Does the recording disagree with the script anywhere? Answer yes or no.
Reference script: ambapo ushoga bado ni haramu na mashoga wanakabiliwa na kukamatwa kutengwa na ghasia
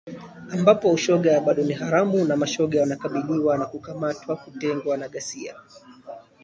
no